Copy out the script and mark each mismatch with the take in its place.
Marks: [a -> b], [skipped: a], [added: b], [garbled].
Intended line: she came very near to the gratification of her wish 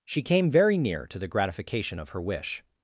she came very near to the gratification of her wish